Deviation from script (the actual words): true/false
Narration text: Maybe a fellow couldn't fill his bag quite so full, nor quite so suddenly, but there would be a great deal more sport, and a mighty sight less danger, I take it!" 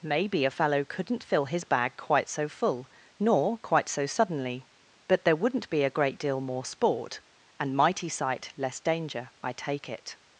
true